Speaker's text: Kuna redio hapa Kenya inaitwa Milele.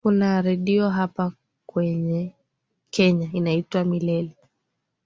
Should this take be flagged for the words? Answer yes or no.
no